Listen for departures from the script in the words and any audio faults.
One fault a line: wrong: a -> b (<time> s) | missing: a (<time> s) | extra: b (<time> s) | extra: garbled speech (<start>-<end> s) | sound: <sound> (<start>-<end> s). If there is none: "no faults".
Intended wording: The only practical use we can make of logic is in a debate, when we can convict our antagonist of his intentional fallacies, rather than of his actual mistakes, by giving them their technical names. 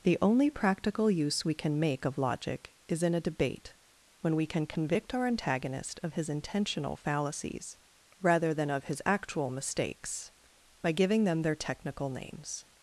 no faults